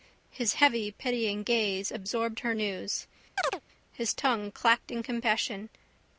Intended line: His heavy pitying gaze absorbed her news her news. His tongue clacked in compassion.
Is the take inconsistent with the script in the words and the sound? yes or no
yes